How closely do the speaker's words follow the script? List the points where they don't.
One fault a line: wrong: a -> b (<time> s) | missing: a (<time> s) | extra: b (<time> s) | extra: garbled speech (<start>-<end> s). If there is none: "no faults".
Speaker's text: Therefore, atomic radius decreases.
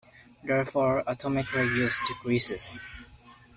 no faults